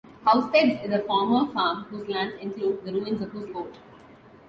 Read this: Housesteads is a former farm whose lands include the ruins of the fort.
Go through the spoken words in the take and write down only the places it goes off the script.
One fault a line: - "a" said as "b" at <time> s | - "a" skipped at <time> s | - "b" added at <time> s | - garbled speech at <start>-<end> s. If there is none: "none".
- "the" said as "whose" at 3.3 s